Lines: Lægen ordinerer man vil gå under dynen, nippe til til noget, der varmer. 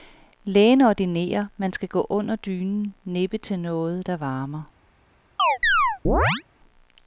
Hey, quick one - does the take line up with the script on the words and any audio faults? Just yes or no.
no